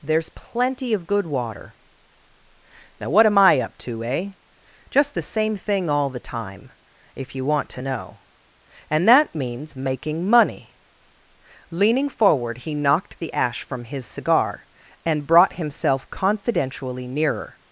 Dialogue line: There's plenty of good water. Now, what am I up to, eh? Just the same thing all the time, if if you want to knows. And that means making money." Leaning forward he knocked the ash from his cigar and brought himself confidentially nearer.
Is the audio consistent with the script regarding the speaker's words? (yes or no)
no